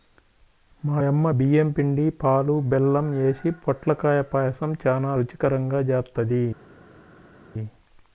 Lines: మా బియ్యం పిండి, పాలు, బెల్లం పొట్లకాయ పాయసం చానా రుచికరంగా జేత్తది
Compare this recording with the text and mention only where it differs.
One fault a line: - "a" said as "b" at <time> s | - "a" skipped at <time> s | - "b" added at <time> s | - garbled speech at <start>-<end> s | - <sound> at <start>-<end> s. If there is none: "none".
- "యమ్మ" added at 1.0 s
- "యేసి" added at 3.2 s